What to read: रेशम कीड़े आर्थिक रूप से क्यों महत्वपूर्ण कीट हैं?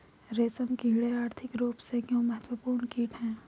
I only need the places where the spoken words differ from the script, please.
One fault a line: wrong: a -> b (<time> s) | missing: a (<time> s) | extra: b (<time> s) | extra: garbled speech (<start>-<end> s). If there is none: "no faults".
no faults